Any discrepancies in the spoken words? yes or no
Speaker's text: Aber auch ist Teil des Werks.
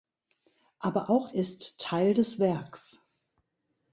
no